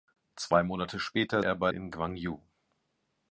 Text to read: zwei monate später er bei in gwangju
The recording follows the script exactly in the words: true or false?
true